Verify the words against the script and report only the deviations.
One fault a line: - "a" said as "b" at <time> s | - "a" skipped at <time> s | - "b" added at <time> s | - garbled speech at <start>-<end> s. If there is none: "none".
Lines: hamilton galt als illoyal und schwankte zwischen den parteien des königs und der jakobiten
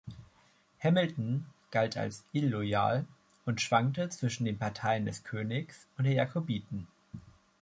none